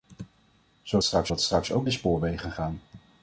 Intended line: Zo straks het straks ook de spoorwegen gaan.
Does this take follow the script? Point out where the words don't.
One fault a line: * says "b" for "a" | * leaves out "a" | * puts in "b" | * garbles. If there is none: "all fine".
all fine